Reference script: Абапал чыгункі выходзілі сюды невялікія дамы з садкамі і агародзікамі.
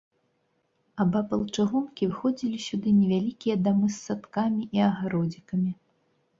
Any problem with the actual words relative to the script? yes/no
no